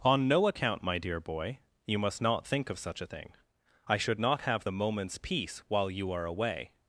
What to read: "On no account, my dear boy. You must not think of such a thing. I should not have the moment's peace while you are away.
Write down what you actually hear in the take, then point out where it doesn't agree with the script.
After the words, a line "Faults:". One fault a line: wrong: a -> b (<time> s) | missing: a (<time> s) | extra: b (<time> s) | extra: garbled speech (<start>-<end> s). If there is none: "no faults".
"On no account, my dear boy. You must not think of such a thing. I should not have the moment's peace while you are away.
Faults:
no faults